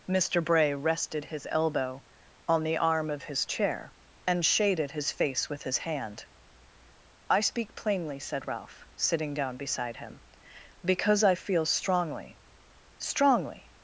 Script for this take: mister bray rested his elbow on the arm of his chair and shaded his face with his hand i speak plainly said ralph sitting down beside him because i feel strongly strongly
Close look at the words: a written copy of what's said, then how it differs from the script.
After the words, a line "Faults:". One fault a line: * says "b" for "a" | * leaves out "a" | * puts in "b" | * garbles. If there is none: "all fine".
mister bray rested his elbow on the arm of his chair and shaded his face with his hand i speak plainly said ralph sitting down beside him because i feel strongly strongly
Faults:
all fine